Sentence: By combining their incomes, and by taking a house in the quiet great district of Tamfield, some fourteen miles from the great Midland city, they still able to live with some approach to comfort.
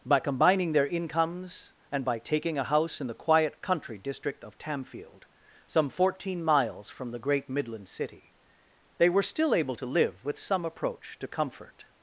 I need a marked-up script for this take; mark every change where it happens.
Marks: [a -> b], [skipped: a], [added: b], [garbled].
By combining their incomes, and by taking a house in the quiet [great -> country] district of Tamfield, some fourteen miles from the great Midland city, they [added: were] still able to live with some approach to comfort.